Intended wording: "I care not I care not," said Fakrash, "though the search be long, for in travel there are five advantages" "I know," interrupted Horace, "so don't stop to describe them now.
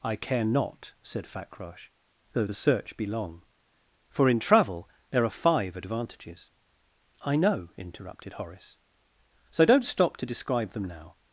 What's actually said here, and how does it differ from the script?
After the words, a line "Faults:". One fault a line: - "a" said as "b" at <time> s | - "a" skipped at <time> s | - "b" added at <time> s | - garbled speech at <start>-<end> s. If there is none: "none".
"I care not," said Fakrash, "though the search be long, for in travel there are five advantages" "I know," interrupted Horace, "so don't stop to describe them now.
Faults:
- "I care not" skipped at 0.9 s